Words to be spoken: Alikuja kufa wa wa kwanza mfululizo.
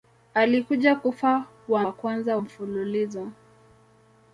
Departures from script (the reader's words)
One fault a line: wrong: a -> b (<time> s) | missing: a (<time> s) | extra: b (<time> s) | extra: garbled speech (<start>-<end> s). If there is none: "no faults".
no faults